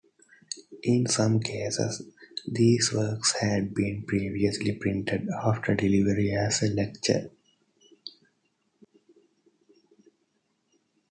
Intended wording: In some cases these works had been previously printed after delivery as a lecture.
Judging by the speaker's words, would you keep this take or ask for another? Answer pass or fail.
pass